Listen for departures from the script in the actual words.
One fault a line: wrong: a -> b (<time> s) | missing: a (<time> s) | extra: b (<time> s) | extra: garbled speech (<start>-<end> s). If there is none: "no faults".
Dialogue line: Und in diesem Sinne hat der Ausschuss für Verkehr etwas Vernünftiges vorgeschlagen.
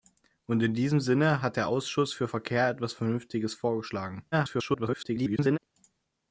extra: garbled speech (4.3-5.6 s)